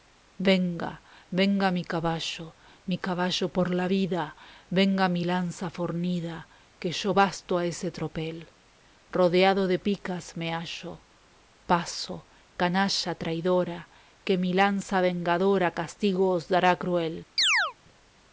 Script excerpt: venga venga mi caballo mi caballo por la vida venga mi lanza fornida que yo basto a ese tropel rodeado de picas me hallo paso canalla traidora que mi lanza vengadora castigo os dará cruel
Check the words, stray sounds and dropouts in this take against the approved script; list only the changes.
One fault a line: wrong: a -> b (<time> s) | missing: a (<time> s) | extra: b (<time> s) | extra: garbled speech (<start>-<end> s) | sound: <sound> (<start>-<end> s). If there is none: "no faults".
sound: chirp (17.4-17.7 s)